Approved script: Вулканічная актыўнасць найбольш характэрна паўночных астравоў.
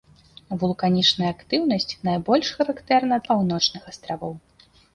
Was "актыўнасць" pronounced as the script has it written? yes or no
yes